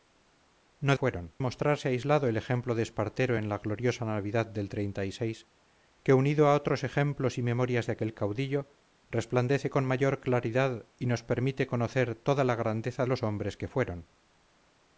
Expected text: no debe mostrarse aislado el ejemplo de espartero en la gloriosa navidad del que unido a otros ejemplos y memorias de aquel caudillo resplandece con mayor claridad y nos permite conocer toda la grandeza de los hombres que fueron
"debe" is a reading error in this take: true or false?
true